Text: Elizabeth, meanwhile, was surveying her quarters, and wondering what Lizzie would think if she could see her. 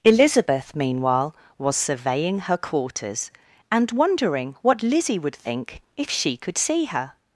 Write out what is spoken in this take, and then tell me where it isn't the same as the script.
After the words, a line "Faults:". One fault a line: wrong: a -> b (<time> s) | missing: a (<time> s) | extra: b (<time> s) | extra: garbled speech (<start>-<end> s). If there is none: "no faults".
Elizabeth, meanwhile, was surveying her quarters, and wondering what Lizzie would think if she could see her.
Faults:
no faults